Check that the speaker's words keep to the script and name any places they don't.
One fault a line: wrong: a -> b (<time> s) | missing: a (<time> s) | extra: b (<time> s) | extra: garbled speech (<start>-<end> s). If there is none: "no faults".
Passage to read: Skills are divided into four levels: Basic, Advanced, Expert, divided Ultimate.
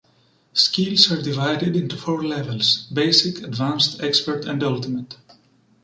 wrong: divided -> and (4.4 s)